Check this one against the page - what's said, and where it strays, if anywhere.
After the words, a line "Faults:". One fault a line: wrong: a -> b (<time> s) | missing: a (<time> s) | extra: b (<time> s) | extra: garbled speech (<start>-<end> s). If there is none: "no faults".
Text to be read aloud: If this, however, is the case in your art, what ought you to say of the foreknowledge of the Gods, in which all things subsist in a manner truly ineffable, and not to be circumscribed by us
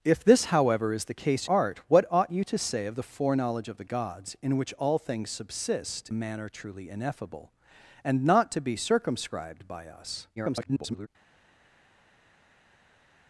If this, however, is the case art, what ought you to say of the foreknowledge of the Gods, in which all things subsist a manner truly ineffable, and not to be circumscribed by us [garbled]
Faults:
missing: in your (1.5 s)
missing: in (6.1 s)
extra: garbled speech (10.4-11.1 s)